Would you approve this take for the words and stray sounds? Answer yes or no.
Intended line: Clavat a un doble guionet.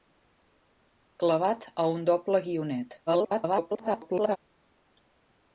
no